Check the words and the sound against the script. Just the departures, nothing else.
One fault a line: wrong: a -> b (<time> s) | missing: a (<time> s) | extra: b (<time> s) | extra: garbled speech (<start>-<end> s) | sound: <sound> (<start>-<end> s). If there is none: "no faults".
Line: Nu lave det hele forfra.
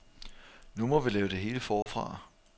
extra: må vi (0.9 s)
sound: dropout (1.8-1.9 s)